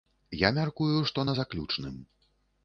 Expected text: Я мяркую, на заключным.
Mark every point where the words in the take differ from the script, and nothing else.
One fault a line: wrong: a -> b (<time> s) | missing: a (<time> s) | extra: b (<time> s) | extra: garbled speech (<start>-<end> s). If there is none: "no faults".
extra: што (1.1 s)